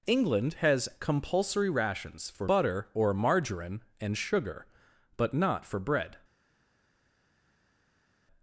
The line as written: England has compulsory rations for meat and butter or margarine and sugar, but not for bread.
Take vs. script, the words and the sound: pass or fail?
fail